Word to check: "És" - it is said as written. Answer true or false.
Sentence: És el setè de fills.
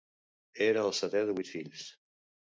false